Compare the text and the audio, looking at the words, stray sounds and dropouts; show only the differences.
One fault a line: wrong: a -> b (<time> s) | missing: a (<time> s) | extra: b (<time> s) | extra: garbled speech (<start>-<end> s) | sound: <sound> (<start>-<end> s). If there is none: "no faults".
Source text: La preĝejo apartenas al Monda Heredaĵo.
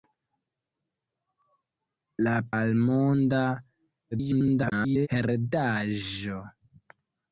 missing: preĝejo apartenas (2.3 s)
extra: garbled speech (4.1-5.1 s)